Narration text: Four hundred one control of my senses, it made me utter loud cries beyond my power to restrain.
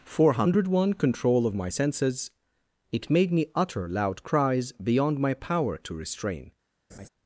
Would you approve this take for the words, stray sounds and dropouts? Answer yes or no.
no